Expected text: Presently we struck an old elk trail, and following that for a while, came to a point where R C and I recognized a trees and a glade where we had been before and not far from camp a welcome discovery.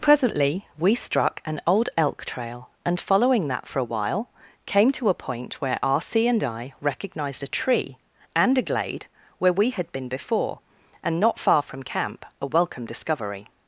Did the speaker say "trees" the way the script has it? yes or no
no